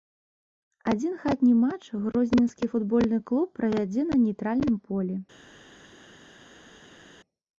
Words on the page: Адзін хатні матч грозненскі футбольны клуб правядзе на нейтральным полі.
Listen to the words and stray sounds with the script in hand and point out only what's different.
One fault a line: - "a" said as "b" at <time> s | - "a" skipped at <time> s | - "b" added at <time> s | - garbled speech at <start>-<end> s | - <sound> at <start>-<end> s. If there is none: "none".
none